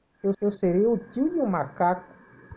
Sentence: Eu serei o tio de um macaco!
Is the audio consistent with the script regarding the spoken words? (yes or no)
no